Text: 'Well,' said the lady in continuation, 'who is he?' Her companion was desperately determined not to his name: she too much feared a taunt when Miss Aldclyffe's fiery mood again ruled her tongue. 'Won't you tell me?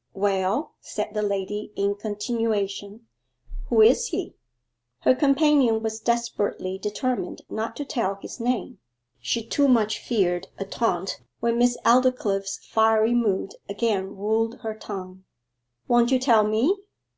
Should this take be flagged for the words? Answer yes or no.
yes